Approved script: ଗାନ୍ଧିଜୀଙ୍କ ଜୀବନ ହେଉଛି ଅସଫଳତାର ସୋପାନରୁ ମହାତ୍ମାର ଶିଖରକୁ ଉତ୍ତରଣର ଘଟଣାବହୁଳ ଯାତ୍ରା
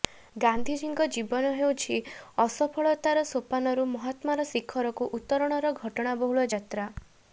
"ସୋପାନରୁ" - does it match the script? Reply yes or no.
yes